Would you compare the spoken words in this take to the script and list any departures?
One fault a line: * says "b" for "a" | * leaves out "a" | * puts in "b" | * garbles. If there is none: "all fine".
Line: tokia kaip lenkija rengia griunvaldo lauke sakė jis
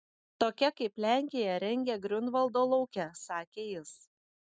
all fine